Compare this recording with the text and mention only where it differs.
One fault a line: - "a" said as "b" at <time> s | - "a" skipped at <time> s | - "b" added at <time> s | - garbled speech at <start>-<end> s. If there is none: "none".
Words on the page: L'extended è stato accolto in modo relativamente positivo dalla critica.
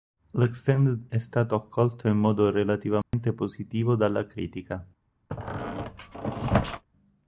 none